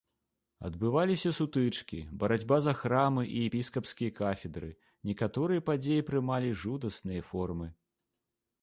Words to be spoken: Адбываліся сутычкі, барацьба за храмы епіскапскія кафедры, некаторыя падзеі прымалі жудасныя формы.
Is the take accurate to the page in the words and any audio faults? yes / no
no